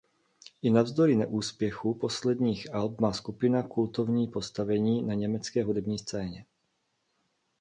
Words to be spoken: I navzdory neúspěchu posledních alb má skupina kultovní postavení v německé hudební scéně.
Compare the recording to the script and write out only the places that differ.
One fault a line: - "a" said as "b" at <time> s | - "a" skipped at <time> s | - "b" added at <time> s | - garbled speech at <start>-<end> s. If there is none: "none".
- "v" said as "na" at 5.0 s